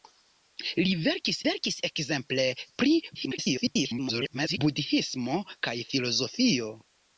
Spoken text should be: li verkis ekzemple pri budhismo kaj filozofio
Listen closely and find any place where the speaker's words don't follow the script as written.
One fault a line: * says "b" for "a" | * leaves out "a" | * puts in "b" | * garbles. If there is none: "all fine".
* puts in "verkis"
* garbles